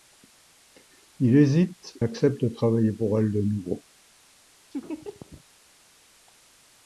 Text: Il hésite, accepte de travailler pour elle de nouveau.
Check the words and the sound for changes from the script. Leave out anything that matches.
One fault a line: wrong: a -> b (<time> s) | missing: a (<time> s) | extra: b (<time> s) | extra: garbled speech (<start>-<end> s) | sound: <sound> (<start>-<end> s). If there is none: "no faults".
sound: laugh (4.7-5.4 s)